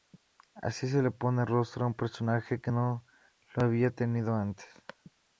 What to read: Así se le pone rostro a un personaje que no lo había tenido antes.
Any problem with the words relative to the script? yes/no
no